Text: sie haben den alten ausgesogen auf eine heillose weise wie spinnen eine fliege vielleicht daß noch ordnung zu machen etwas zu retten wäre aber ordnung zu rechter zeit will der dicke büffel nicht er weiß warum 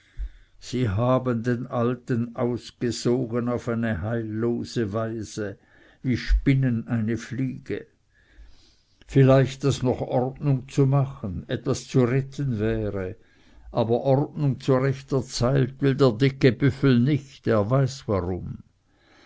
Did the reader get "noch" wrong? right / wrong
right